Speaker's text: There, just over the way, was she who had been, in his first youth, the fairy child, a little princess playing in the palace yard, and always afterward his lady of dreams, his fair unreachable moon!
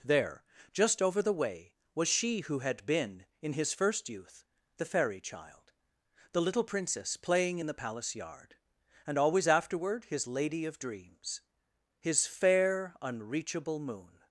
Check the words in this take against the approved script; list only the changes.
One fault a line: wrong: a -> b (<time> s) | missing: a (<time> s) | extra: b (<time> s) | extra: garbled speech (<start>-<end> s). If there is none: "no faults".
wrong: a -> the (6.3 s)